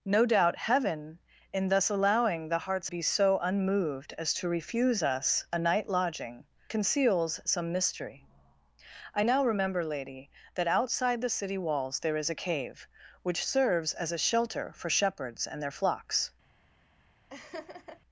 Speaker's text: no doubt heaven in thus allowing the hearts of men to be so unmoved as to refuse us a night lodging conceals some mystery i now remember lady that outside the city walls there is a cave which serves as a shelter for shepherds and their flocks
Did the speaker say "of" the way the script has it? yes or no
no